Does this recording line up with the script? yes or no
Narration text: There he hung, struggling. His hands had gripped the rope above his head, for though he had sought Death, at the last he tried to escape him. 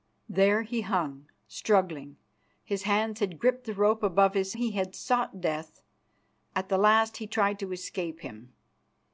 no